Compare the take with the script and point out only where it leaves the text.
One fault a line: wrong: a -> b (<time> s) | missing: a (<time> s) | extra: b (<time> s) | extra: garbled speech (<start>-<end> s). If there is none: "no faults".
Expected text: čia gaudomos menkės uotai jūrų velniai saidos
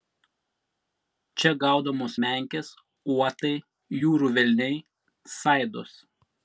no faults